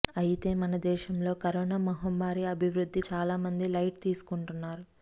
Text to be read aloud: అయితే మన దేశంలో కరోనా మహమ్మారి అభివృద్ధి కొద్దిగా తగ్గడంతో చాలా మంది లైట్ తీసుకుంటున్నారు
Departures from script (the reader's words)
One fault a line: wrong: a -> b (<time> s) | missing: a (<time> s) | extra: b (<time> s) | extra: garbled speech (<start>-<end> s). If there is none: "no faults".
missing: కొద్దిగా తగ్గడంతో (3.0 s)